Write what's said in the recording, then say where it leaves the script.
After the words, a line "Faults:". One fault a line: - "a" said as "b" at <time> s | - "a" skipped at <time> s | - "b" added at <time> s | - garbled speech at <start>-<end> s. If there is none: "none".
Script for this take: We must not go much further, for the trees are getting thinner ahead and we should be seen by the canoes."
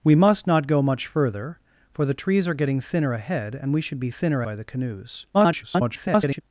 We must not go much further, for the trees are getting thinner ahead and we should be thinner by the canoes." [garbled]
Faults:
- "seen" said as "thinner" at 4.1 s
- garbled speech at 5.3-6.4 s